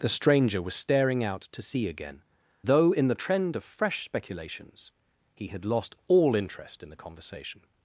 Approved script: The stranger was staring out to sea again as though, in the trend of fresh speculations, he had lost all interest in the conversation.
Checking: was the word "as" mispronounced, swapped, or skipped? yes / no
yes